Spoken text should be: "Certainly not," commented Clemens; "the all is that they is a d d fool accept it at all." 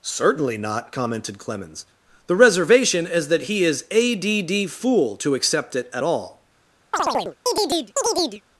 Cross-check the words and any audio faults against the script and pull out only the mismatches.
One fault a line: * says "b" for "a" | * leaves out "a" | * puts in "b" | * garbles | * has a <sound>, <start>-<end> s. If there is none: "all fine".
* says "reservation" for "all"
* says "he" for "they"
* puts in "to"
* has a chirp, 6.9-8.4 s